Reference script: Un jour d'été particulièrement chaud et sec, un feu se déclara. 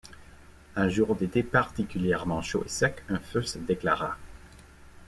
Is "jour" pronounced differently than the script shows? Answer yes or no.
no